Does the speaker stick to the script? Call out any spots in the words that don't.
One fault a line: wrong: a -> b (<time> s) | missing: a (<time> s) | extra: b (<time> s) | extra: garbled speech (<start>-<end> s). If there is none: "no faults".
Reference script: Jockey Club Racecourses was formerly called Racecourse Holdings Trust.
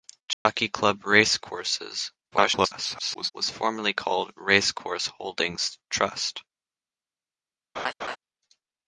extra: garbled speech (2.3-3.3 s)